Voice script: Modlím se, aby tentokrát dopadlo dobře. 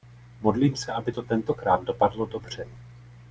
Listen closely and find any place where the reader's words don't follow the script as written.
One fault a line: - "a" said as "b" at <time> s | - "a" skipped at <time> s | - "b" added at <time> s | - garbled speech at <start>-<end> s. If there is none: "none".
- "to" added at 1.1 s